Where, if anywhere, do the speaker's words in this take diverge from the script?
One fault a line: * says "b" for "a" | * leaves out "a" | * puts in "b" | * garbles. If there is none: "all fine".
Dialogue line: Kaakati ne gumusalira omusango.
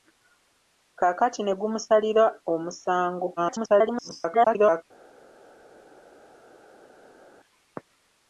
* garbles